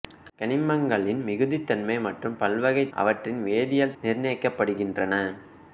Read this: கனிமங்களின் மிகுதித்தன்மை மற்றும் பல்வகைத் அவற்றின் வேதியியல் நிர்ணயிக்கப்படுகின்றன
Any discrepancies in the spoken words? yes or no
no